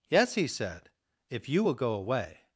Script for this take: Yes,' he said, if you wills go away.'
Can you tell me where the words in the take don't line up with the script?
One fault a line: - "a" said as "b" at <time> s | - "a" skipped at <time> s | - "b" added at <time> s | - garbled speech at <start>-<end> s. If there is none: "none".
- "wills" said as "will" at 1.6 s